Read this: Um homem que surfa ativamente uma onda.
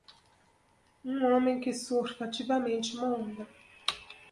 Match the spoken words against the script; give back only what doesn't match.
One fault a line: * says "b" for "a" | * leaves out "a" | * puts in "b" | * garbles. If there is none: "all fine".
all fine